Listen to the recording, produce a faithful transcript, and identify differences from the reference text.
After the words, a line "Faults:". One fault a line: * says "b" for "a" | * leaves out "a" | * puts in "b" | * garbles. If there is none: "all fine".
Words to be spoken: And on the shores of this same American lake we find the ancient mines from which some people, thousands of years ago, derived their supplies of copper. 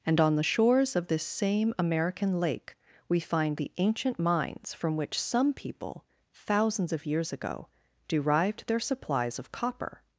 And on the shores of this same American lake we find the ancient mines from which some people, thousands of years ago, derived their supplies of copper.
Faults:
all fine